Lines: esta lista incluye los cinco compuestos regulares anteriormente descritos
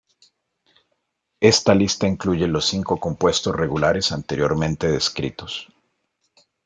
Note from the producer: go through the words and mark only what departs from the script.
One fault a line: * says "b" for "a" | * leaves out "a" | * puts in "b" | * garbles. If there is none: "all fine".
all fine